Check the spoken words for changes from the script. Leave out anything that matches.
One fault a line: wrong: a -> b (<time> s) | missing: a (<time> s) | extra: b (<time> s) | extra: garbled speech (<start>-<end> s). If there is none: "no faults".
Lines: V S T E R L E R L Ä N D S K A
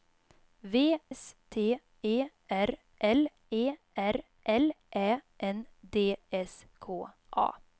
no faults